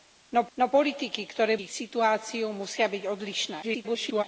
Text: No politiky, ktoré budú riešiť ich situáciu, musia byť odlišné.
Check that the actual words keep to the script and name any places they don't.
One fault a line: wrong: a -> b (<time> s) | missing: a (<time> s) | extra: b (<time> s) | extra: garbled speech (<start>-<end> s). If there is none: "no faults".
extra: no (0.6 s)
missing: budú riešiť (1.6 s)
extra: garbled speech (3.6-4.2 s)